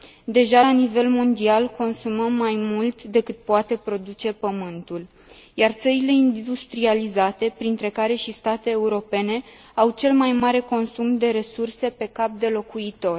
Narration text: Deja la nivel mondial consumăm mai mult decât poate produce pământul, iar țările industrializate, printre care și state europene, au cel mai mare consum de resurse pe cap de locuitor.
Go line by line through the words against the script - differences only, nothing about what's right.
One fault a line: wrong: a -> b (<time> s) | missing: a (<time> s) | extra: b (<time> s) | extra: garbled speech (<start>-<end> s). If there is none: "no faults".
no faults